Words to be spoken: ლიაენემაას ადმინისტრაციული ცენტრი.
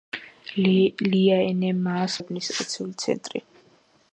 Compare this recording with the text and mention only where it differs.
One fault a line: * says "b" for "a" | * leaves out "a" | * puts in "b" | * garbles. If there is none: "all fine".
all fine